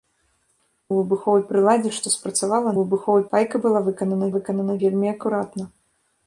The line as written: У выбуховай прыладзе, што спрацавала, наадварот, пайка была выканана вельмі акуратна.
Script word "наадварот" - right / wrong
wrong